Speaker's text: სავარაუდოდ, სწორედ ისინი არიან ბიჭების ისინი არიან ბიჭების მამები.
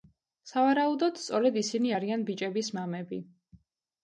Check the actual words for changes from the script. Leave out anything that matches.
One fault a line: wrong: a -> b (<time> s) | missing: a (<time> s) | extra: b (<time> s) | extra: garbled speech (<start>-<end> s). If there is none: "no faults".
missing: ისინი არიან ბიჭების (2.7 s)